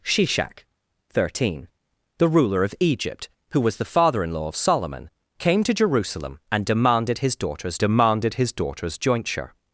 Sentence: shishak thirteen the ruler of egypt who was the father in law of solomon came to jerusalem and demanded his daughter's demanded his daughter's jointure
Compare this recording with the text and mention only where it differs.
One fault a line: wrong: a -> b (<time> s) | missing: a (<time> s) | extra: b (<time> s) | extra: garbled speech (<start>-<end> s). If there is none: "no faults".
no faults